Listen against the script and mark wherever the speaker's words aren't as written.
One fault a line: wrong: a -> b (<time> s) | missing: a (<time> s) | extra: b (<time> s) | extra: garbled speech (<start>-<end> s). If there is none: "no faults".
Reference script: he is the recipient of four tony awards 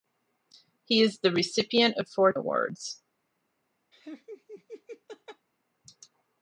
missing: tony (2.3 s)